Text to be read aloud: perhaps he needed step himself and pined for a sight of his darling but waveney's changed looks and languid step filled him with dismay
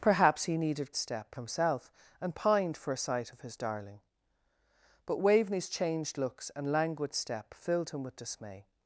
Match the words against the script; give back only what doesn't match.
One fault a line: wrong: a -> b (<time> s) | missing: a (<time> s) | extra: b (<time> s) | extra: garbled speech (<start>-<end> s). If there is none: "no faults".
no faults